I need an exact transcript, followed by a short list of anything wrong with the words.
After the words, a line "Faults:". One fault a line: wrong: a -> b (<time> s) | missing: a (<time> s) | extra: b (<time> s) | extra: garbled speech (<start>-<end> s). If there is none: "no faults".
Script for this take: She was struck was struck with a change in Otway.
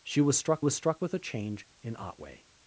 She was struck was struck with a change in Otway.
Faults:
no faults